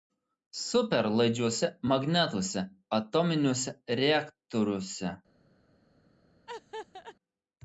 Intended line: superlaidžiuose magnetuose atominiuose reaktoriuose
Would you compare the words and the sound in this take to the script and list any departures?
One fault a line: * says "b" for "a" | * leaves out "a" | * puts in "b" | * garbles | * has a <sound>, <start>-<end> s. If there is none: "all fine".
* has a laugh, 6.5-7.2 s